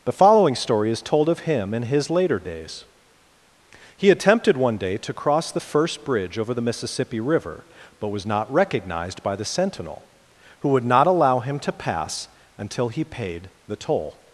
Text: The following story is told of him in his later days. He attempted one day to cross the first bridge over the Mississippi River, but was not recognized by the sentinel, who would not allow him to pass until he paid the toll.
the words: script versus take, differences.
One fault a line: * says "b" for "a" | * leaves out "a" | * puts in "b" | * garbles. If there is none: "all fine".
all fine